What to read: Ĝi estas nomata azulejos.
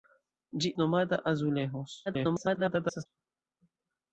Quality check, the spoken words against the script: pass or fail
fail